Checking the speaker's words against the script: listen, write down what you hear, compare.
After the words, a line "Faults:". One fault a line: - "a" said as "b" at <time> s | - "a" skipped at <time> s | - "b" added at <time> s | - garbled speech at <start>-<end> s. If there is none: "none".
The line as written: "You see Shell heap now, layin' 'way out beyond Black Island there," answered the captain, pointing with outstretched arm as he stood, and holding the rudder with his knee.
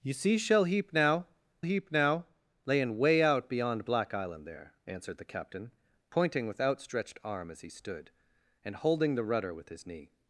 "You see Shell heap now heap now, layin' 'way out beyond Black Island there," answered the captain, pointing with outstretched arm as he stood, and holding the rudder with his knee.
Faults:
- "heap now" added at 1.6 s